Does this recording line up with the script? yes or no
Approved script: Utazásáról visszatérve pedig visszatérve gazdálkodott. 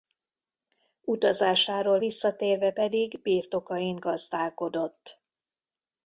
no